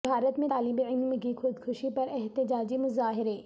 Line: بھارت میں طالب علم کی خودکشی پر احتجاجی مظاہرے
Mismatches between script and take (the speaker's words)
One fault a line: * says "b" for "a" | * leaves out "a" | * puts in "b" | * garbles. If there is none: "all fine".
all fine